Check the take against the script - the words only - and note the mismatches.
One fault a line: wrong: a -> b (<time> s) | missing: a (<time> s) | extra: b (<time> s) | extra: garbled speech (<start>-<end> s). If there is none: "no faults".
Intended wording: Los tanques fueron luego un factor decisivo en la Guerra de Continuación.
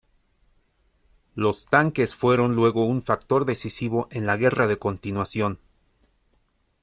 no faults